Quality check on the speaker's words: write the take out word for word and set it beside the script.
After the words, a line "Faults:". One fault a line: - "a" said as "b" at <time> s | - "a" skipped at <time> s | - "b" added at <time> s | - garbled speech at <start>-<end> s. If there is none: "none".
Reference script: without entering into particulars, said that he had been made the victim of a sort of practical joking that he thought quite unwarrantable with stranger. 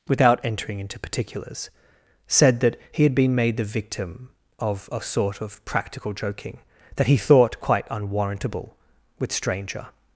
without entering into particulars, said that he had been made the victim of a sort of practical joking that he thought quite unwarrantable with stranger.
Faults:
none